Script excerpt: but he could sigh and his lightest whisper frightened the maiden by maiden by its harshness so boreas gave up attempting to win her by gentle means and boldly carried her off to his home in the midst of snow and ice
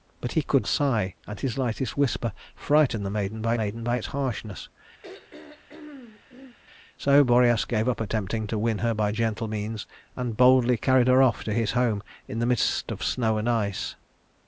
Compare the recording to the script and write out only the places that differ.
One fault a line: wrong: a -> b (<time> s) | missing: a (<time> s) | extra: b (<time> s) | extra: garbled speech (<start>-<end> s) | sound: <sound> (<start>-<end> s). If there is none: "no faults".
sound: throat clearing (5.0-6.6 s)